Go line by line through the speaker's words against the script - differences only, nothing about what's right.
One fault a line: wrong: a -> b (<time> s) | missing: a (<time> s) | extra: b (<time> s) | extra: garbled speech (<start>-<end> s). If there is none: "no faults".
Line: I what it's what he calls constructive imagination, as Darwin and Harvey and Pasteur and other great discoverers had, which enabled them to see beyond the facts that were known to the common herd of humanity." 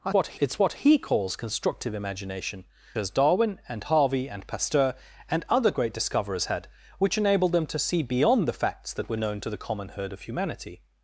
no faults